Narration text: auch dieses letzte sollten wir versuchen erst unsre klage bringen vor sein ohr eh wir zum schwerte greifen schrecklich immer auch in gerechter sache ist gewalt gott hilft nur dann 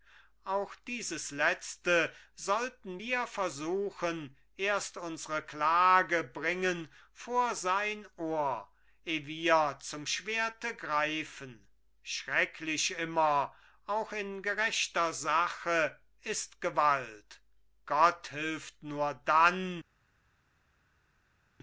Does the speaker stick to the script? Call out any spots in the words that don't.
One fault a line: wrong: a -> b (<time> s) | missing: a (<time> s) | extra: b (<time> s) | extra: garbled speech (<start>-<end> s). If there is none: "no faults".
no faults